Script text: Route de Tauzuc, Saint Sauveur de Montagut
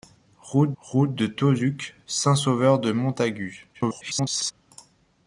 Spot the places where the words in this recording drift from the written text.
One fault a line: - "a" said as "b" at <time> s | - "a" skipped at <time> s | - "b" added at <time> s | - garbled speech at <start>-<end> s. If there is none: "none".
- "route" added at 0.8 s
- garbled speech at 3.7-4.5 s